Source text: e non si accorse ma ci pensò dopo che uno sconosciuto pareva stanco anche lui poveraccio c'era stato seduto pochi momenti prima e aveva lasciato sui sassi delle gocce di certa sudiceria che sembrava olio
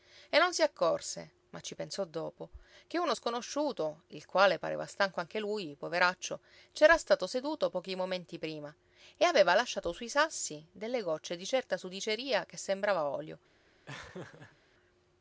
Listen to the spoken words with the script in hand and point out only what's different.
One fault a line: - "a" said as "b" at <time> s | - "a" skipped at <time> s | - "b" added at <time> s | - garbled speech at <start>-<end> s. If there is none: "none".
- "il quale" added at 4.1 s